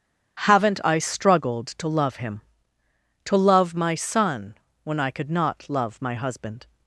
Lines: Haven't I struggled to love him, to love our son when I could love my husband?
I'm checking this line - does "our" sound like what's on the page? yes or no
no